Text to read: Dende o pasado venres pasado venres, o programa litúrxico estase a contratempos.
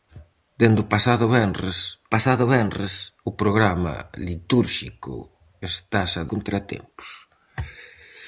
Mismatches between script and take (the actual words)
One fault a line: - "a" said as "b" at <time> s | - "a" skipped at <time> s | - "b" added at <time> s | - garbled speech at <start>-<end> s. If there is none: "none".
none